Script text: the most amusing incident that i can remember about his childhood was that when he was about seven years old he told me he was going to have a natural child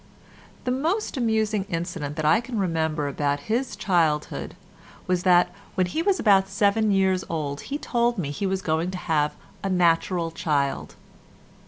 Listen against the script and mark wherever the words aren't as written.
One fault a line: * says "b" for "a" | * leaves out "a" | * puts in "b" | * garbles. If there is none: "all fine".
all fine